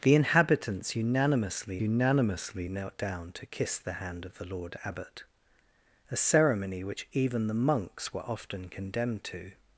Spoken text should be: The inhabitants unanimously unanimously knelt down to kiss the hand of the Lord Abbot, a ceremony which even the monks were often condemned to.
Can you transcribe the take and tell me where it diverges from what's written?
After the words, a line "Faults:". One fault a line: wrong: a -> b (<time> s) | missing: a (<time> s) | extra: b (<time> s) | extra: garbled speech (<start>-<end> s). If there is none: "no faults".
The inhabitants unanimously unanimously knelt down to kiss the hand of the Lord Abbot, a ceremony which even the monks were often condemned to.
Faults:
no faults